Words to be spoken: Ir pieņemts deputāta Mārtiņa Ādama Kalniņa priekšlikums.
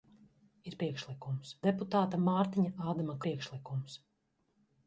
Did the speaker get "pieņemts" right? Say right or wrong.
wrong